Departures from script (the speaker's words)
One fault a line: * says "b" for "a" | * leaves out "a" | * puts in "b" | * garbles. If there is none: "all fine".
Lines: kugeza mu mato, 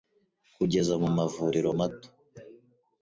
* puts in "mavuriro"